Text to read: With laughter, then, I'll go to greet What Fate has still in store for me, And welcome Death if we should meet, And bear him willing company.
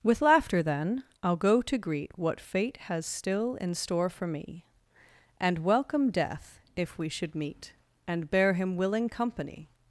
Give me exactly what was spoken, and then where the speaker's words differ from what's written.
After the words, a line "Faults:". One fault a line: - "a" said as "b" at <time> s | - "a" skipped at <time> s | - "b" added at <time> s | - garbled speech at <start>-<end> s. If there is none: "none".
With laughter, then, I'll go to greet What Fate has still in store for me, And welcome Death if we should meet, And bear him willing company.
Faults:
none